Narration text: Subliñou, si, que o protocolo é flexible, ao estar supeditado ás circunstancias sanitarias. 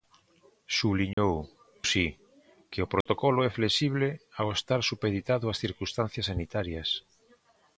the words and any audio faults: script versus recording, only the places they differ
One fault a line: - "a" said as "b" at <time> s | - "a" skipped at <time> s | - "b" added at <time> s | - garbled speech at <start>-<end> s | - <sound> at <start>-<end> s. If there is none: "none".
- dropout at 1.1-1.2 s
- dropout at 3.0-3.1 s